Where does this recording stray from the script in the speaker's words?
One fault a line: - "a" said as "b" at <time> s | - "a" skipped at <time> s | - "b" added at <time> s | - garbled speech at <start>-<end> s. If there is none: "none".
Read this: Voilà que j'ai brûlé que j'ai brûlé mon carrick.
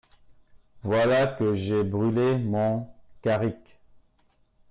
- "que j'ai brûlé" skipped at 2.4 s